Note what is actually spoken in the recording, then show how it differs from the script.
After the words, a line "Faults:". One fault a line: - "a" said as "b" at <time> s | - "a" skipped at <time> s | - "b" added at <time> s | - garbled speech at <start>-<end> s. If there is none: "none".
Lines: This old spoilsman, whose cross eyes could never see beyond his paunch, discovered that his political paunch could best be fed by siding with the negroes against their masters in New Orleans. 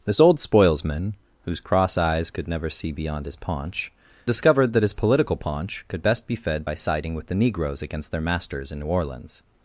This old spoilsman, whose cross eyes could never see beyond his paunch, discovered that his political paunch could best be fed by siding with the negroes against their masters in New Orleans.
Faults:
none